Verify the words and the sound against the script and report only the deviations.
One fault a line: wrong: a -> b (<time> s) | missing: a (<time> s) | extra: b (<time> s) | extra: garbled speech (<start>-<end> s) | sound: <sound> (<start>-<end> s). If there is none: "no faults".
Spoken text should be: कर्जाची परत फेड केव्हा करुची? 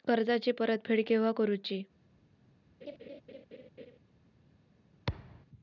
sound: laugh (2.8-4.0 s)
sound: thud (5.1-5.5 s)